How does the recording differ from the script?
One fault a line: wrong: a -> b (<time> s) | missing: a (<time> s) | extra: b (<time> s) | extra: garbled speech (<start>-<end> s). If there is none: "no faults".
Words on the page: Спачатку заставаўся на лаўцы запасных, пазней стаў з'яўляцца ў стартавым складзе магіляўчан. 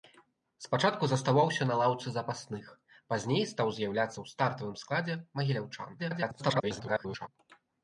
extra: garbled speech (6.0-7.3 s)